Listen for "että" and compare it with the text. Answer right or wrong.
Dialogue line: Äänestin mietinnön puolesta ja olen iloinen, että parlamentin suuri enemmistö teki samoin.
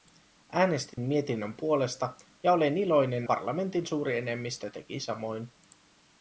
wrong